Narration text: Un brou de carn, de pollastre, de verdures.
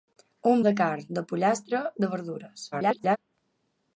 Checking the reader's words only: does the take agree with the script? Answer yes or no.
no